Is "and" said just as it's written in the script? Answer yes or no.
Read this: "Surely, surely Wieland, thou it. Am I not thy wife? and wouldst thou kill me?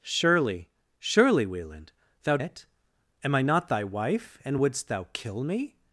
yes